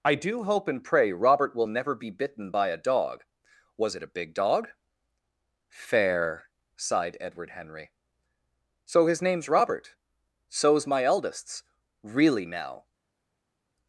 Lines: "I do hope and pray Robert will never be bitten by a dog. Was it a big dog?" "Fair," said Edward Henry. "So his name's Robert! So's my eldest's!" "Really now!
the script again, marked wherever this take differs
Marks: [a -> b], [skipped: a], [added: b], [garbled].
"I do hope and pray Robert will never be bitten by a dog. Was it a big dog?" "Fair," [said -> sighed] Edward Henry. "So his name's Robert! So's my eldest's!" "Really now!